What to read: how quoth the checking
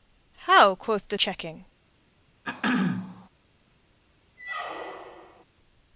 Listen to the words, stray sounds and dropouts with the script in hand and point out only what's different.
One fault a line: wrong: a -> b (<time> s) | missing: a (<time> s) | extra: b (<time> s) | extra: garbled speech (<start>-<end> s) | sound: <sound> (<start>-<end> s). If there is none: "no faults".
sound: throat clearing (2.4-3.3 s)
sound: squeak (4.4-5.4 s)